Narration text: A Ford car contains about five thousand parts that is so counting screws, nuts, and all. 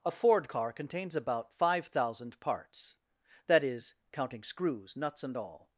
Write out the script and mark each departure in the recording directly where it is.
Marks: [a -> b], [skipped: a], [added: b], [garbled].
A Ford car contains about five thousand parts that is [skipped: so] counting screws, nuts, and all.